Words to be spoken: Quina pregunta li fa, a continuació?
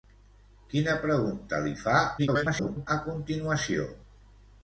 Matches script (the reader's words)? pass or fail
fail